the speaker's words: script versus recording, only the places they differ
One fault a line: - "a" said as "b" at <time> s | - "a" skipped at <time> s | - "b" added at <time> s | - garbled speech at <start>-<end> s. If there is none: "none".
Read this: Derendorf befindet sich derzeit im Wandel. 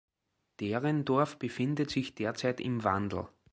none